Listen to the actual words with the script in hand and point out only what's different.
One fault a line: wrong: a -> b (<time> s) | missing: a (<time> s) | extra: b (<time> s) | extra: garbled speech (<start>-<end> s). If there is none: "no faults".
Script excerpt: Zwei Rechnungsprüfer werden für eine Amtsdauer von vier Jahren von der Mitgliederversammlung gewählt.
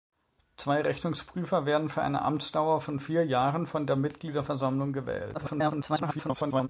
extra: garbled speech (5.3-6.7 s)